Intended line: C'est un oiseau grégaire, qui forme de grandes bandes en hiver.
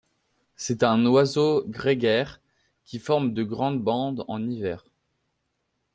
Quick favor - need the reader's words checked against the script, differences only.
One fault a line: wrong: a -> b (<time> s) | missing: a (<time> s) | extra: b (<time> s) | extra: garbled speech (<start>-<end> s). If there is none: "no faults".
no faults